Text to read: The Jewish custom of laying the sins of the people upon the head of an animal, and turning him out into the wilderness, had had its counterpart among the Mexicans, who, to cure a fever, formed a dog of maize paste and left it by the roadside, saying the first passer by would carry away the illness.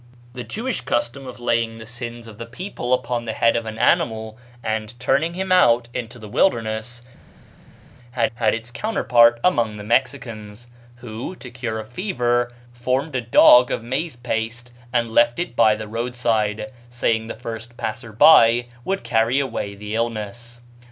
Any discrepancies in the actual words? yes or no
no